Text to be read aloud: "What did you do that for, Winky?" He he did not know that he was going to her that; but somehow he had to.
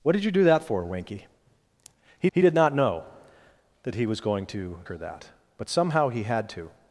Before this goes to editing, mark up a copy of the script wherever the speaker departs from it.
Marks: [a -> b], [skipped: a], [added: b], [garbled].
"What did you do that for, Winky?" He he did not know that he was going to her that; but somehow he had to.